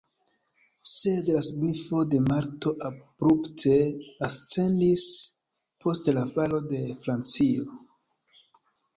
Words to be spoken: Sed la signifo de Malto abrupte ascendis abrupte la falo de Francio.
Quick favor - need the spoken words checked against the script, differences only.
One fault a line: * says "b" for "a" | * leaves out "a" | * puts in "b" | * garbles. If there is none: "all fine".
* says "post" for "abrupte"